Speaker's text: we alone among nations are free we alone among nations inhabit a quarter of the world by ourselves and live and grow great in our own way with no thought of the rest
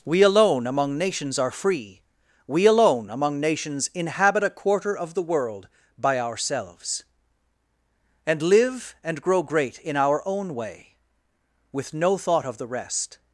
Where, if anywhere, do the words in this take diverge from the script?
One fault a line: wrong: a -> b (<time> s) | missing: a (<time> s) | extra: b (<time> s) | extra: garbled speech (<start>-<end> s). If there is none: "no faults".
no faults